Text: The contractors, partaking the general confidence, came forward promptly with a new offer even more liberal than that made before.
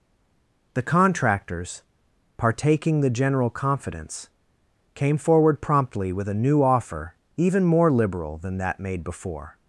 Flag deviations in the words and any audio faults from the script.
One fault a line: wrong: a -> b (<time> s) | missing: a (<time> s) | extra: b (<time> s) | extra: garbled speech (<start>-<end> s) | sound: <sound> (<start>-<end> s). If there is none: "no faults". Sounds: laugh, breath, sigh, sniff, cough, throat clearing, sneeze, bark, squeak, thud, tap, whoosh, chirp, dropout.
no faults